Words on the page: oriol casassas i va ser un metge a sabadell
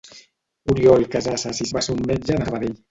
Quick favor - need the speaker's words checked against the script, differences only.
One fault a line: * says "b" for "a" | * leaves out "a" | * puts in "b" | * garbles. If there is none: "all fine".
all fine